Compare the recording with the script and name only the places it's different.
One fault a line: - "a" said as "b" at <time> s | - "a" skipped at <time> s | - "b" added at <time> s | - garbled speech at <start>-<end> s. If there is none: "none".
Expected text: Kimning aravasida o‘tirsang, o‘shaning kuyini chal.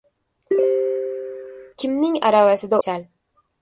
- "o‘tirsang o‘shaning kuyini" skipped at 2.8 s